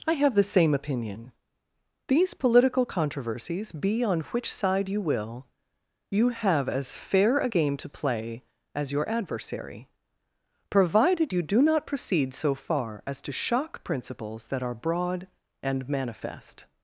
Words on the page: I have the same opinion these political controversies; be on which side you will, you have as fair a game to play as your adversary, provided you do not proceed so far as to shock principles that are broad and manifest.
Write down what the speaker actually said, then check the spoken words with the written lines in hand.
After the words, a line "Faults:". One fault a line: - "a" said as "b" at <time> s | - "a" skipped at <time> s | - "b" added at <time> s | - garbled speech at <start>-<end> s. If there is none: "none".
I have the same opinion these political controversies; be on which side you will, you have as fair a game to play as your adversary, provided you do not proceed so far as to shock principles that are broad and manifest.
Faults:
none